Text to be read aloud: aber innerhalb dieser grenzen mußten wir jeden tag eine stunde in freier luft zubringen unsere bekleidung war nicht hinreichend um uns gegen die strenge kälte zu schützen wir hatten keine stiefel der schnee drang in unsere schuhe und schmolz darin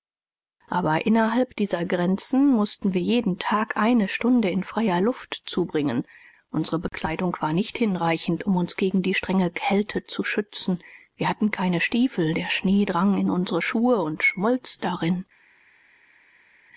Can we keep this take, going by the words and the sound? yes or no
yes